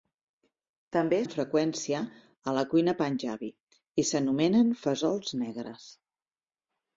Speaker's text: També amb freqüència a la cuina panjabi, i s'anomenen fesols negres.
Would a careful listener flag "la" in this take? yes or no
no